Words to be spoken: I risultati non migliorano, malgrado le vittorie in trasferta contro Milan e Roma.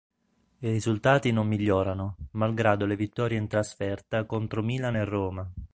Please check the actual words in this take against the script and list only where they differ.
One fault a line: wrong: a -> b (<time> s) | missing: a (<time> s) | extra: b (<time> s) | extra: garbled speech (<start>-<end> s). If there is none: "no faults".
no faults